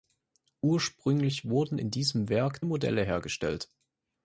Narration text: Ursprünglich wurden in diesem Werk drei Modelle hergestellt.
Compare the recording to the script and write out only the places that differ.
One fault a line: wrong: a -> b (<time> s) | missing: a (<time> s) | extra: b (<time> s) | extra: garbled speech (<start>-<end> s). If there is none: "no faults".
missing: drei (2.6 s)